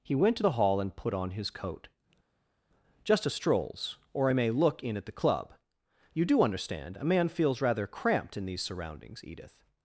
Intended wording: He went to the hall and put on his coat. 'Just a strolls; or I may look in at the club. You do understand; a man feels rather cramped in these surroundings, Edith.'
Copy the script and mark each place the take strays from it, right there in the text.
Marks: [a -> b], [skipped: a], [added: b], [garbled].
He went to the hall and put on his coat. 'Just a strolls; or I may look in at the club. You do understand; a man feels rather cramped in these surroundings, Edith.'